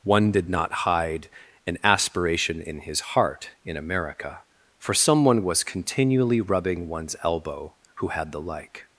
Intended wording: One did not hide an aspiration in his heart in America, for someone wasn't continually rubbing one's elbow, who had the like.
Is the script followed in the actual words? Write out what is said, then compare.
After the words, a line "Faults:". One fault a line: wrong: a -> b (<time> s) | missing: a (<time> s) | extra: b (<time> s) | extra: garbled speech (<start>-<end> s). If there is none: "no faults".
One did not hide an aspiration in his heart in America, for someone was continually rubbing one's elbow, who had the like.
Faults:
wrong: wasn't -> was (5.4 s)